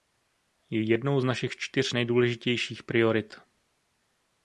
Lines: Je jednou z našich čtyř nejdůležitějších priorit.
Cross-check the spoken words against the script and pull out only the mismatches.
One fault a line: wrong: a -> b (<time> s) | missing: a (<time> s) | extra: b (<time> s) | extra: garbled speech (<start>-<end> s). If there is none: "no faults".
no faults